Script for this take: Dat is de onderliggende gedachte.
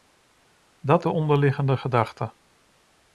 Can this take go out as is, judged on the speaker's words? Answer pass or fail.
fail